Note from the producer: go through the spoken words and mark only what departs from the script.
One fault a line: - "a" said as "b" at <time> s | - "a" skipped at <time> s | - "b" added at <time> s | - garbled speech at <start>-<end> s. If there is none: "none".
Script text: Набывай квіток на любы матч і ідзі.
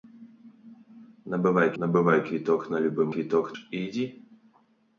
- "набывай" added at 1.8 s
- "матч" said as "квіток" at 3.1 s